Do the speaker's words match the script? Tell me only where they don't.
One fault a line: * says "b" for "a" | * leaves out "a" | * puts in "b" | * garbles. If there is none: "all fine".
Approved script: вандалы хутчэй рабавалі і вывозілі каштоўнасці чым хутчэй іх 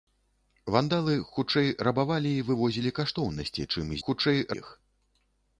all fine